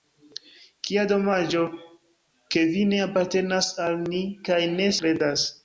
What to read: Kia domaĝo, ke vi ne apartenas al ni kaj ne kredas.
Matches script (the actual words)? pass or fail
pass